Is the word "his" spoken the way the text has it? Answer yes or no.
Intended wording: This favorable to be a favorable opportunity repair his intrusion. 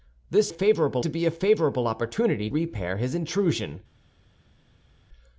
yes